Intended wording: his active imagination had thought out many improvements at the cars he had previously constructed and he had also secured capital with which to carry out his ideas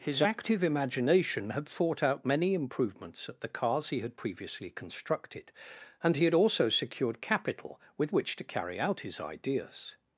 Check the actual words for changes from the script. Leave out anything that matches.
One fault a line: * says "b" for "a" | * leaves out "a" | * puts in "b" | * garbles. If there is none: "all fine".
all fine